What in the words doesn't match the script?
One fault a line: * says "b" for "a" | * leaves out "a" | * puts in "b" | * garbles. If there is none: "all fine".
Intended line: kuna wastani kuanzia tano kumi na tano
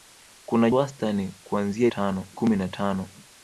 all fine